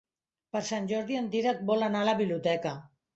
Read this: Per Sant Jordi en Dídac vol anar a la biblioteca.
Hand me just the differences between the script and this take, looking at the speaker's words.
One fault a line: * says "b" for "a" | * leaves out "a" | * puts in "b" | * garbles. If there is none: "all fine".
all fine